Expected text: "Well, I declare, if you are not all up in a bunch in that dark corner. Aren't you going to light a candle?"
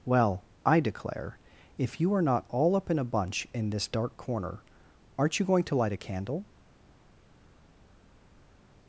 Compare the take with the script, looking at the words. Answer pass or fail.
fail